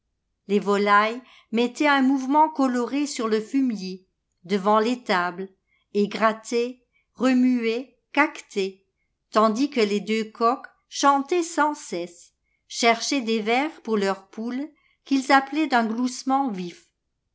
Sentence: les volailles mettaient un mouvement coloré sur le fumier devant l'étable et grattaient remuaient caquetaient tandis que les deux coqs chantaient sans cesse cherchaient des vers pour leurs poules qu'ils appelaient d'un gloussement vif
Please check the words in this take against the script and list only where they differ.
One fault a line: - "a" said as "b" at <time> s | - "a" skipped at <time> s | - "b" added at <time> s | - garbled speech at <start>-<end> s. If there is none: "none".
none